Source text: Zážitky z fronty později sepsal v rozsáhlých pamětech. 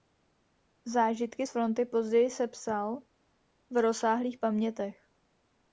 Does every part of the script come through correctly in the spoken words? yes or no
yes